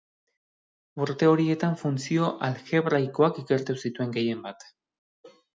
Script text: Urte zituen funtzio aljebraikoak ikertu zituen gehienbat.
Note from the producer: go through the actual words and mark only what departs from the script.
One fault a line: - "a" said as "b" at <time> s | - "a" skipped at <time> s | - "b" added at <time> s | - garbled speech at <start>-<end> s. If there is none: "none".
- "zituen" said as "horietan" at 1.3 s